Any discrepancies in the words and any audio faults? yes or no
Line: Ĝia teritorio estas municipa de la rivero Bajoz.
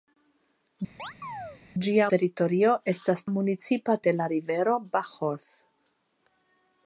yes